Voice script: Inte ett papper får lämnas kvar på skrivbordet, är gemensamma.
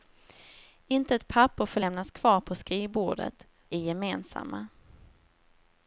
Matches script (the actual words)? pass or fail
pass